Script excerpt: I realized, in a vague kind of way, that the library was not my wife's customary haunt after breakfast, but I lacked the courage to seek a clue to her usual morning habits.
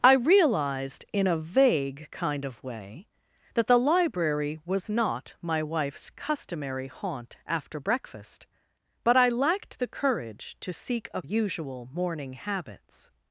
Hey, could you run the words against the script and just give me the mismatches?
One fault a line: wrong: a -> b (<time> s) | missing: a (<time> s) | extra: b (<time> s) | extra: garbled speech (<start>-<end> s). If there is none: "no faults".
missing: clue to her (11.2 s)